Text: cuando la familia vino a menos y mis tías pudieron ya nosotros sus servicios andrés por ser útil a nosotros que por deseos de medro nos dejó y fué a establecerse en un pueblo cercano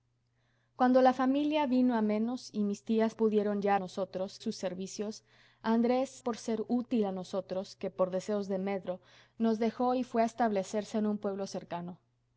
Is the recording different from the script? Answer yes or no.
no